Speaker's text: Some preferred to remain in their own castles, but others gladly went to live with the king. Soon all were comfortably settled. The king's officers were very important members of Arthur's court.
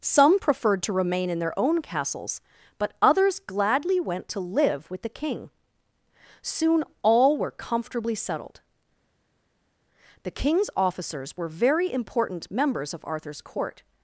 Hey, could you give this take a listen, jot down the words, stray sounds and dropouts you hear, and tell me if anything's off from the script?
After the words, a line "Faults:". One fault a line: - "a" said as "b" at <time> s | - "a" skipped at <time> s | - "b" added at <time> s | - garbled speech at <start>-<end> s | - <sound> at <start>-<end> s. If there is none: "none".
Some preferred to remain in their own castles, but others gladly went to live with the king. Soon all were comfortably settled. The king's officers were very important members of Arthur's court.
Faults:
none